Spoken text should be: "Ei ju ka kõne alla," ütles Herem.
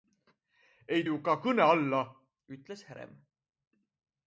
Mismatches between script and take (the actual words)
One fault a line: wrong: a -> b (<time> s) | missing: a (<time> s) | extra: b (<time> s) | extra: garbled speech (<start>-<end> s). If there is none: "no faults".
no faults